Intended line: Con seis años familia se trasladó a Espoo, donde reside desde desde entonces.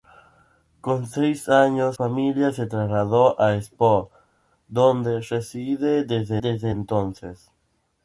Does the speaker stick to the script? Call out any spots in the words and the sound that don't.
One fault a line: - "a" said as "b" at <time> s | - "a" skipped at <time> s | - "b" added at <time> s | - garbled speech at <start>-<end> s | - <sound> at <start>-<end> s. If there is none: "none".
none